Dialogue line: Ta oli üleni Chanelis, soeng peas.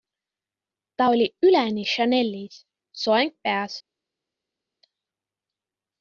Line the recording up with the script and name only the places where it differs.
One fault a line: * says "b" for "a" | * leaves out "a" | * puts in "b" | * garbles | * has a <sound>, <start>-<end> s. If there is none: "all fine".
all fine